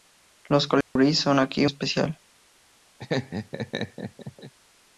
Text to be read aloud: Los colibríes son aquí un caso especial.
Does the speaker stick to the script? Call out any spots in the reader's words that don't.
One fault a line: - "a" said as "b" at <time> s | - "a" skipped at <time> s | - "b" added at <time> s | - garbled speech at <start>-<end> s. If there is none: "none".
- "un caso" skipped at 1.7 s